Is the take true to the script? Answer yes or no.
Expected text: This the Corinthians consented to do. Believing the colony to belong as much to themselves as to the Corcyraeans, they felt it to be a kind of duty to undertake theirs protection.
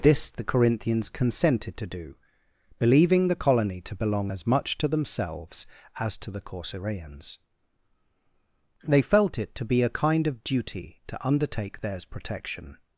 yes